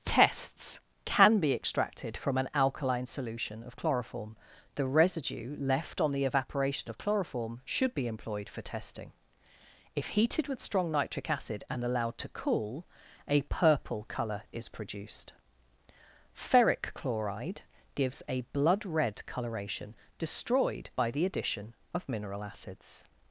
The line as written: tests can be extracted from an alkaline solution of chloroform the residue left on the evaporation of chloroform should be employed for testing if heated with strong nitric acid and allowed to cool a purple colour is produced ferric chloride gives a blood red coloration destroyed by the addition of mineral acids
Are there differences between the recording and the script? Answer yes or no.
no